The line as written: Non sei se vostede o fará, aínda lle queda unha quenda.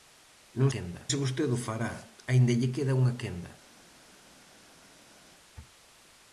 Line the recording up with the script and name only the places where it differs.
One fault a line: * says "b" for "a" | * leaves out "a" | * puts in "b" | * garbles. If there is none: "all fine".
* says "quenda" for "sei"